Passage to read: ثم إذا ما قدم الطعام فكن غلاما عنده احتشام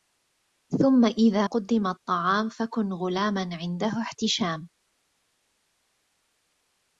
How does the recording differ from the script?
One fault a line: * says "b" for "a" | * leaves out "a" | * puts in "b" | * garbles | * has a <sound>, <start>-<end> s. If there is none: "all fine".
* leaves out "ما"